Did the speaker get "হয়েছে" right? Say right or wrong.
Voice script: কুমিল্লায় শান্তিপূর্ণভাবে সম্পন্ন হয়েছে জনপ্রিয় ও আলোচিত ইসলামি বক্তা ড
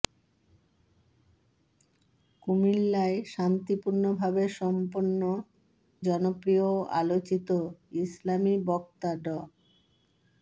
wrong